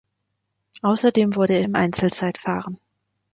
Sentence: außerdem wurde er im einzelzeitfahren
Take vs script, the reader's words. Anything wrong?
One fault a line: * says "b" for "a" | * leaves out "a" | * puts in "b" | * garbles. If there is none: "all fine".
all fine